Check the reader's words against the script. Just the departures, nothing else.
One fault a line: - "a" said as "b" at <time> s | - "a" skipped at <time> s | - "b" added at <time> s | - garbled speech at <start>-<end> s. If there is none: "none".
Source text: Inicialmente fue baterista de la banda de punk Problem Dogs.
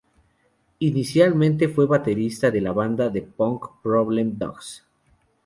none